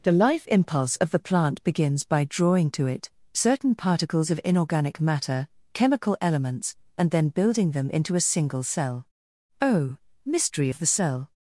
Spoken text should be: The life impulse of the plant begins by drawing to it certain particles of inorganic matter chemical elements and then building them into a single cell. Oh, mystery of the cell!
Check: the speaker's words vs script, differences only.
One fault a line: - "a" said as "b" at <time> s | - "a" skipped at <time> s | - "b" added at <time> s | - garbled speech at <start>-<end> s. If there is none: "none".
none